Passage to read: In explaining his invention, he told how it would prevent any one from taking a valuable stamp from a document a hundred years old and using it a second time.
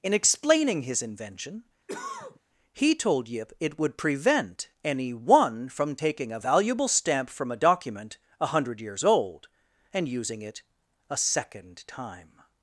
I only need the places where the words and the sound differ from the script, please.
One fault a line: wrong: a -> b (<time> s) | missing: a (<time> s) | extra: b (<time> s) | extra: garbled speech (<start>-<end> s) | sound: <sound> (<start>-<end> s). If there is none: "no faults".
sound: cough (1.9-2.4 s)
wrong: how -> yip (3.3 s)